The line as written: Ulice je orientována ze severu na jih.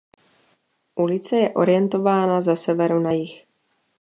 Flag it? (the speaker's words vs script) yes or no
no